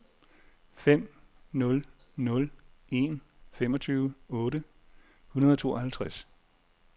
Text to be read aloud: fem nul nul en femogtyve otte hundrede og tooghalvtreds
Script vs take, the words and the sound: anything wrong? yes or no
no